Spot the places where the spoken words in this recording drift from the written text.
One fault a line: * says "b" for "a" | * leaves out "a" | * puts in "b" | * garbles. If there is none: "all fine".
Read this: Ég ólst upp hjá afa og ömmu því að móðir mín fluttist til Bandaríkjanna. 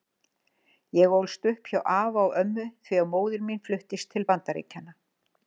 all fine